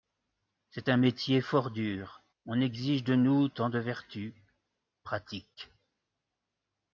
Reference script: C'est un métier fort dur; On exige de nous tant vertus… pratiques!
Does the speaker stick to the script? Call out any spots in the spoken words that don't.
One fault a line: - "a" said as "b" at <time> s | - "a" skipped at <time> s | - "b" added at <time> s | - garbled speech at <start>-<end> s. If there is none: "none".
- "de" added at 3.7 s